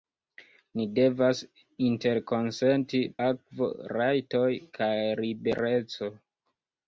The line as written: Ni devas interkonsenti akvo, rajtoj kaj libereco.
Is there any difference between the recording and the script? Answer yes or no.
no